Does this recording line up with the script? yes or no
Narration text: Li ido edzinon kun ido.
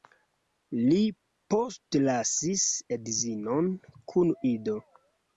no